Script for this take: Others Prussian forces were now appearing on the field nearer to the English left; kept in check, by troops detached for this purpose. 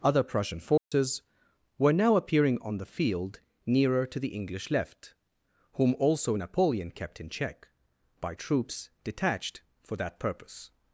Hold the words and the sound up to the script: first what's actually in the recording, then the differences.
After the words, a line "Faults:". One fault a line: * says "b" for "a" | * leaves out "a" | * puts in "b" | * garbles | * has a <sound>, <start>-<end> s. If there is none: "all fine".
Other Prussian forces were now appearing on the field nearer to the English left; whom also Napoleon kept in check, by troops detached for that purpose.
Faults:
* says "Other" for "Others"
* has a dropout, 0.8-0.9 s
* puts in "whom also Napoleon"
* says "that" for "this"